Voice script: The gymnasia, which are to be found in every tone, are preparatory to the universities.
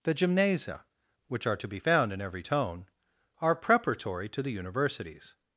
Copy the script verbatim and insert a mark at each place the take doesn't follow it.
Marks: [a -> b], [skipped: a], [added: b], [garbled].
The gymnasia, which are to be found in every tone, are preparatory to the universities.